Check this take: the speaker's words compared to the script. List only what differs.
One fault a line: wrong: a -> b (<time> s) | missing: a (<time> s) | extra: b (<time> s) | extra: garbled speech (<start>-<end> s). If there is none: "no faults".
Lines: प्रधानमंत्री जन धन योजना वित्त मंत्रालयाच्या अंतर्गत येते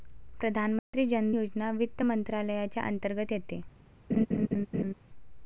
missing: धन (1.3 s)